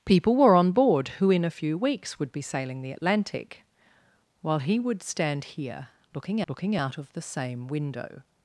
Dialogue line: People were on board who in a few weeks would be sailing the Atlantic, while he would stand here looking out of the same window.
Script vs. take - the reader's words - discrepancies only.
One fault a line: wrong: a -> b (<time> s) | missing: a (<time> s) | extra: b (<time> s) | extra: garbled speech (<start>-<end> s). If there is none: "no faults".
extra: looking (6.5 s)